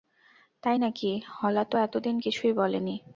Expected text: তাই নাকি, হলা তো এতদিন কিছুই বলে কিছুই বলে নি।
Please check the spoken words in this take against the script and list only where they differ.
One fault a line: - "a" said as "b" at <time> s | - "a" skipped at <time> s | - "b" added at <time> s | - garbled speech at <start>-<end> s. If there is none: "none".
- "কিছুই বলে" skipped at 2.8 s